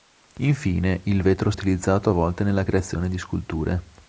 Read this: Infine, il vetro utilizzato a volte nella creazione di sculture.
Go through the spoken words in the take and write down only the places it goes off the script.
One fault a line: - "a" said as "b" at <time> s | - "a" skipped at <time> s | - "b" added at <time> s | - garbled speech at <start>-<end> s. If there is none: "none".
none